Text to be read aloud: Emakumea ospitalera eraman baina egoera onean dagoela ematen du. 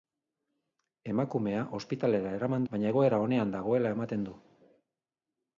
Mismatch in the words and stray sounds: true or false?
false